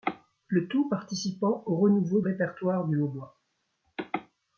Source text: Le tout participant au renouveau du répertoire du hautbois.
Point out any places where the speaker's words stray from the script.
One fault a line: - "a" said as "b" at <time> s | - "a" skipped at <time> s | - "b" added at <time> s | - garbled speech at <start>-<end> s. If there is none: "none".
- "du" skipped at 2.2 s